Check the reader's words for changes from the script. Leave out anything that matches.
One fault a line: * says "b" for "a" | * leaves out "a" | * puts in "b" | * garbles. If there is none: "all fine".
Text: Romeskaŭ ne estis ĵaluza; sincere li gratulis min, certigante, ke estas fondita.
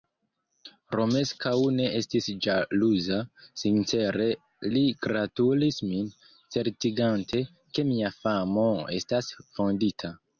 * puts in "mia famo"